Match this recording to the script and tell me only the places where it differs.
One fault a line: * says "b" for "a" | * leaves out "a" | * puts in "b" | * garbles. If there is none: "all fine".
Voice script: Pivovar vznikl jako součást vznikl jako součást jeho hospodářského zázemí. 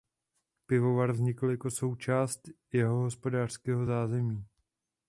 * leaves out "vznikl jako součást"